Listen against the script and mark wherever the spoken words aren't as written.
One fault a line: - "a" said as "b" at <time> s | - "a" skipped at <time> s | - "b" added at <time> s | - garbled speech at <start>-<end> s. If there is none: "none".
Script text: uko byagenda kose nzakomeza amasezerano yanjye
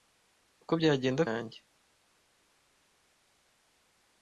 - "kose nzakomeza amasezerano" skipped at 1.2 s